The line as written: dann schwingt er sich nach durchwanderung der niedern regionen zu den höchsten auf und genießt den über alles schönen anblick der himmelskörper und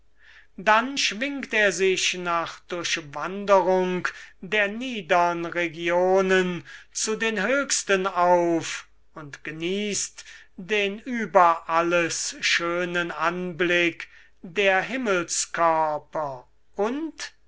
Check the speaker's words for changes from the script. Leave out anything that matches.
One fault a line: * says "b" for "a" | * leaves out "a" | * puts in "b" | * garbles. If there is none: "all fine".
all fine